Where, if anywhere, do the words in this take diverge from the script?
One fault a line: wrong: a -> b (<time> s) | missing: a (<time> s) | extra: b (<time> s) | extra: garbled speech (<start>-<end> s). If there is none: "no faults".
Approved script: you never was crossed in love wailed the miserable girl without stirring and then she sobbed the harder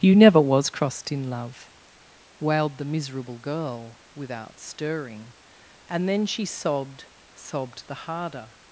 extra: sobbed (7.3 s)